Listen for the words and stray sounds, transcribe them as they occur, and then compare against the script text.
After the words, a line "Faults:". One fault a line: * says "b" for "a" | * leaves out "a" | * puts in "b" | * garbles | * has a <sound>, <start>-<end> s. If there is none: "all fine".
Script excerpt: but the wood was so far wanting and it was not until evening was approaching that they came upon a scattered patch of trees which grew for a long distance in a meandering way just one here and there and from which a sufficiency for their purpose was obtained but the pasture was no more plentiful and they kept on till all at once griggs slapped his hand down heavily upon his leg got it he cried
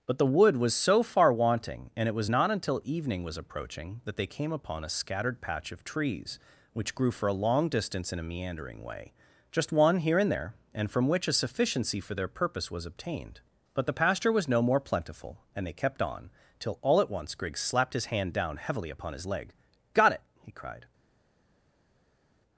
but the wood was so far wanting and it was not until evening was approaching that they came upon a scattered patch of trees which grew for a long distance in a meandering way just one here and there and from which a sufficiency for their purpose was obtained but the pasture was no more plentiful and they kept on till all at once griggs slapped his hand down heavily upon his leg got it he cried
Faults:
all fine